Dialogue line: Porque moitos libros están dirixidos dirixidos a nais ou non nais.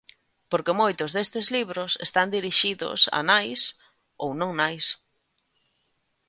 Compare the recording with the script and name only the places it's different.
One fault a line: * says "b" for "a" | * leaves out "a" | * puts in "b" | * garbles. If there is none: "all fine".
* puts in "destes"
* leaves out "dirixidos"